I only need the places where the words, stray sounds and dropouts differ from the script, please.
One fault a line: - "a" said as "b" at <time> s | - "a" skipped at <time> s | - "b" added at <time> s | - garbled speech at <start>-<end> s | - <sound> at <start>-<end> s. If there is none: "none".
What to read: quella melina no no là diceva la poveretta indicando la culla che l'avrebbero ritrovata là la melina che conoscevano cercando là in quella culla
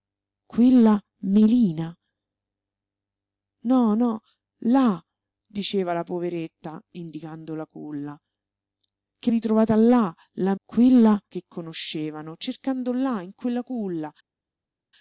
- "l'avrebbero" skipped at 9.3 s
- "melina" said as "quella" at 10.6 s